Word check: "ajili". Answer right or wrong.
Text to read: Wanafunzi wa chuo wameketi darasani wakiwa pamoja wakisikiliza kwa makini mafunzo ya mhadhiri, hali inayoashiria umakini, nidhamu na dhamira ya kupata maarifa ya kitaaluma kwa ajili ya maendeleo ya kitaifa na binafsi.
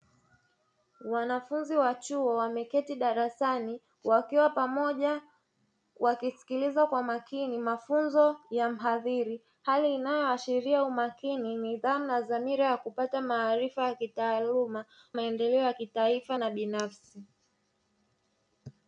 wrong